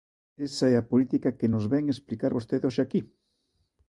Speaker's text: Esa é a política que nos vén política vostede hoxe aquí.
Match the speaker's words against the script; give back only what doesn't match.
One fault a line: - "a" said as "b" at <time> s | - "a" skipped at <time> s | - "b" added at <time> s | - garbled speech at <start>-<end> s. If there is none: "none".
- "política" said as "explicar" at 1.9 s